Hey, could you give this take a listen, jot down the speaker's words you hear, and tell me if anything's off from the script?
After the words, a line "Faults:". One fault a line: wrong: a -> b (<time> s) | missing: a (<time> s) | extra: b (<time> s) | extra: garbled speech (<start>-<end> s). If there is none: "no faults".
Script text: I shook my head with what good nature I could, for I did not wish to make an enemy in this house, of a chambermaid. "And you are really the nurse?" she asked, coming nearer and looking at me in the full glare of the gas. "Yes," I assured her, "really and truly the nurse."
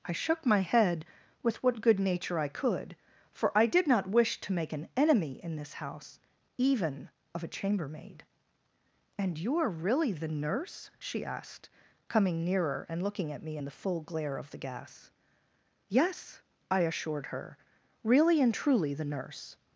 I shook my head with what good nature I could, for I did not wish to make an enemy in this house, even of a chambermaid. "And you are really the nurse?" she asked, coming nearer and looking at me in the full glare of the gas. "Yes," I assured her, "really and truly the nurse."
Faults:
extra: even (6.6 s)